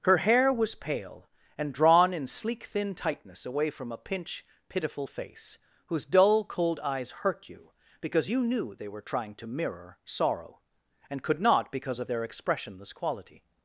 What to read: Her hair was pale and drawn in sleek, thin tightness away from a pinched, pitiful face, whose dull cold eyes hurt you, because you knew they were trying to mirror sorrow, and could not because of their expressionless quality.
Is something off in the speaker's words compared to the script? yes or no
yes